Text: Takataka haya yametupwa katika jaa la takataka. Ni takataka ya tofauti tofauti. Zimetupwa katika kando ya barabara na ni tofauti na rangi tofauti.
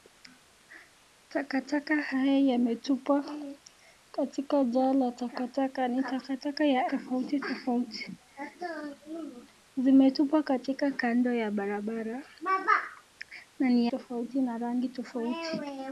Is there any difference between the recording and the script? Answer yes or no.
no